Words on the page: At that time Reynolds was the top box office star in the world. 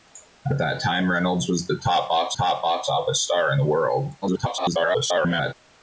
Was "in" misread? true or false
false